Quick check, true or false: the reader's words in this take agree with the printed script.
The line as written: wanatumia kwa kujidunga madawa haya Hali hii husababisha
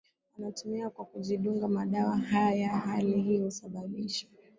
true